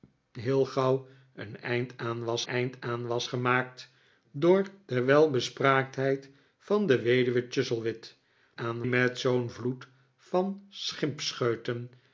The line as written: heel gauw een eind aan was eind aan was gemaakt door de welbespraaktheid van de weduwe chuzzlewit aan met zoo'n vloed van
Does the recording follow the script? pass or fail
pass